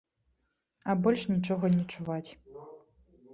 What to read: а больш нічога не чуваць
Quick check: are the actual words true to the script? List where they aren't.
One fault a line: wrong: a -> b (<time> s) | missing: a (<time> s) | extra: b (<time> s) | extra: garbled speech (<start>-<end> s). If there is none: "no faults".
no faults